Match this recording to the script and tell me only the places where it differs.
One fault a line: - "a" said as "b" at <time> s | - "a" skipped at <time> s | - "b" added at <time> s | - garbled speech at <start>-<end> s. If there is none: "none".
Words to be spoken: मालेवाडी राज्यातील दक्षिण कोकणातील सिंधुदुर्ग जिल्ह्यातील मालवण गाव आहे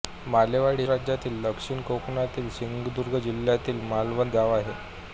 none